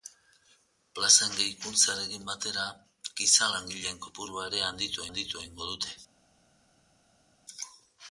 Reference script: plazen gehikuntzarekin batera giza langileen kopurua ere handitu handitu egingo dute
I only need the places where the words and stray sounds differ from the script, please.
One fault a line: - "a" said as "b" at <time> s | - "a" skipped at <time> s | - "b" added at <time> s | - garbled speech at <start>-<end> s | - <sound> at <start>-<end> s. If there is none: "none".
none